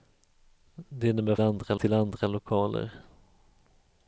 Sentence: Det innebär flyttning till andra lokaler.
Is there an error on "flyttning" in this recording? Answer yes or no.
yes